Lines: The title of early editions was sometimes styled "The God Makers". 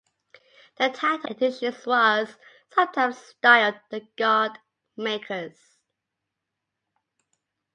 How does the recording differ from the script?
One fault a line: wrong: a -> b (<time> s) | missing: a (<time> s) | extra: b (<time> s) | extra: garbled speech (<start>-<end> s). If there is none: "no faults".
missing: of early (1.3 s)